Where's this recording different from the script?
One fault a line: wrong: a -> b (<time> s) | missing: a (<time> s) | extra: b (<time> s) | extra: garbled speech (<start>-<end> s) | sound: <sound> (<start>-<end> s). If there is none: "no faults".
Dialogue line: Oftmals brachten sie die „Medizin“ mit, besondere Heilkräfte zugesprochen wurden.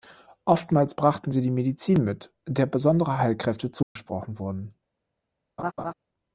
extra: der (2.5 s)
sound: dropout (3.8-4.0 s)
sound: laugh (5.6-5.9 s)